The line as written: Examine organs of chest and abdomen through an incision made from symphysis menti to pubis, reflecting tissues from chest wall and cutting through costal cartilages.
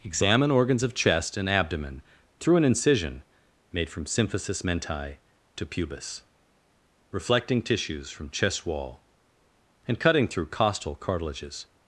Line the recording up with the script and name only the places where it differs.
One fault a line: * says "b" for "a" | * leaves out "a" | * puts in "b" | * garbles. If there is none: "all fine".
all fine